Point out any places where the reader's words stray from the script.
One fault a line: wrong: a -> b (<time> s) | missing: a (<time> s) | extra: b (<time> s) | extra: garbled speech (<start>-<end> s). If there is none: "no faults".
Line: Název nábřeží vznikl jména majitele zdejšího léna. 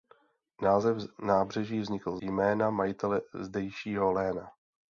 no faults